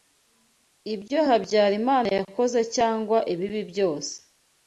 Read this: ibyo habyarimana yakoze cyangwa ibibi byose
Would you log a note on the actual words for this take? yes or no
no